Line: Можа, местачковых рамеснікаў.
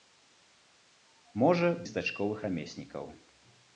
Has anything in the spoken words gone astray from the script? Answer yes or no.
no